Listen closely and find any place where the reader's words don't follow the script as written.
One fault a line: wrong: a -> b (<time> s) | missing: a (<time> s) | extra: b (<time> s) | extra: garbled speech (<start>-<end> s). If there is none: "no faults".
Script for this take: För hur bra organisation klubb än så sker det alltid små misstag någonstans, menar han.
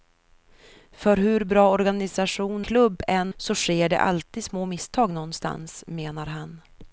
no faults